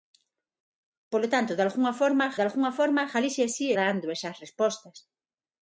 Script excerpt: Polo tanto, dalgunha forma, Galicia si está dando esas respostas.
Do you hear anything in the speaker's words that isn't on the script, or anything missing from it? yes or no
yes